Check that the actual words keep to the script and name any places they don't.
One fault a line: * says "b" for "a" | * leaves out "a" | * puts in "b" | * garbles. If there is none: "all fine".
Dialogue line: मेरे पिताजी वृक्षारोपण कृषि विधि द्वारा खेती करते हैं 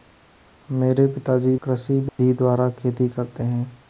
* leaves out "वृक्षारोपण"